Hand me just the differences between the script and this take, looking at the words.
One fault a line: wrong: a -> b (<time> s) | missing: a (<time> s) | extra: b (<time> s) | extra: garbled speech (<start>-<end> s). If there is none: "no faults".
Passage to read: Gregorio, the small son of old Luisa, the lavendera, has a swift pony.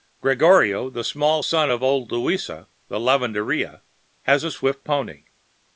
no faults